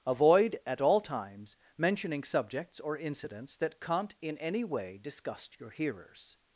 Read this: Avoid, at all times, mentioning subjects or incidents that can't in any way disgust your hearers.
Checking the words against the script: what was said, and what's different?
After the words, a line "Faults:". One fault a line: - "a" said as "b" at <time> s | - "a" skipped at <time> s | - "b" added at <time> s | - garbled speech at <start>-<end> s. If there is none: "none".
Avoid, at all times, mentioning subjects or incidents that can't in any way disgust your hearers.
Faults:
none